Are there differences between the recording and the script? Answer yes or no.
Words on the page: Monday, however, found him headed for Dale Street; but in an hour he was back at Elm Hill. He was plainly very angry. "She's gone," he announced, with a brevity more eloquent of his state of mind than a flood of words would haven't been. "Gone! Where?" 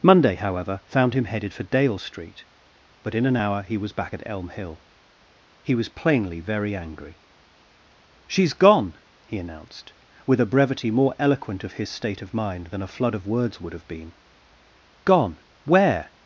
yes